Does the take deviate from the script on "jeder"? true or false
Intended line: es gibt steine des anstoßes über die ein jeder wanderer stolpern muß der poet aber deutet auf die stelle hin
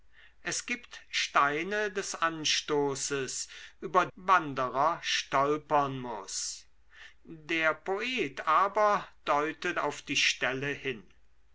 true